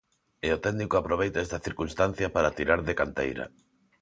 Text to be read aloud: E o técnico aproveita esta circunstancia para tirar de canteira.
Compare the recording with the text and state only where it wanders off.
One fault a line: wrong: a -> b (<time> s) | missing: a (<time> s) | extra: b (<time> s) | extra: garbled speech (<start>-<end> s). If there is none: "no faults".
no faults